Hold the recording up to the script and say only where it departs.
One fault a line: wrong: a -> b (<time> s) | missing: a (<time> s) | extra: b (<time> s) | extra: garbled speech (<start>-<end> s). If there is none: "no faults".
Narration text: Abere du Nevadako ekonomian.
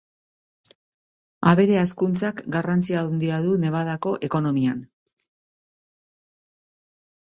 extra: hazkuntzak garrantzi handia (1.8 s)